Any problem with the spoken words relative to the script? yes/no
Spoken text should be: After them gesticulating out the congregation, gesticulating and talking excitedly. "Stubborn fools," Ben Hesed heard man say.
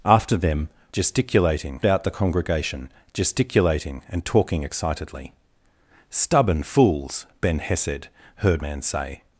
no